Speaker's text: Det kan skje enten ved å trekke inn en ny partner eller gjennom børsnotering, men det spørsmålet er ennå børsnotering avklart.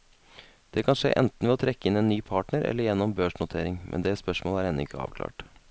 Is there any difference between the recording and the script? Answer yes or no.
yes